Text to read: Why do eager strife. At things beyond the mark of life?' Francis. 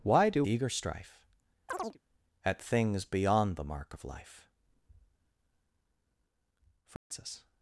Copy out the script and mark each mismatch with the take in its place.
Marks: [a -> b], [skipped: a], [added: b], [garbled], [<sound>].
Why do eager strife. [chirp] At things beyond the mark of life?' Francis. [dropout]